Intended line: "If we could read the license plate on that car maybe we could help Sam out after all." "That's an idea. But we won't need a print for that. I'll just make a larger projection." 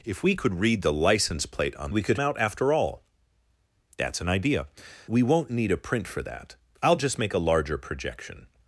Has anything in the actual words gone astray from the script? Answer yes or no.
yes